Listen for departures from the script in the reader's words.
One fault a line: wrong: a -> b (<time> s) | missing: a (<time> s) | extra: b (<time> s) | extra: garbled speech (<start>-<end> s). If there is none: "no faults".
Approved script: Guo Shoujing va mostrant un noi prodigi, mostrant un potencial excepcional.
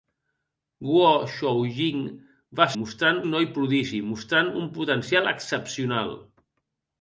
no faults